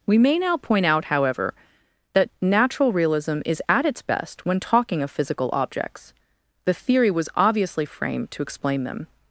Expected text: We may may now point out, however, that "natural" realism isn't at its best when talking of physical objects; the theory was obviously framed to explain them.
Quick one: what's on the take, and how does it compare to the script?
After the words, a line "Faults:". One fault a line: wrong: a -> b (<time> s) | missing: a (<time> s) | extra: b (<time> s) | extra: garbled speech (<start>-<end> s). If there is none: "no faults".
We may now point out, however, that "natural" realism is at its best when talking of physical objects; the theory was obviously framed to explain them.
Faults:
missing: may (0.4 s)
wrong: isn't -> is (3.5 s)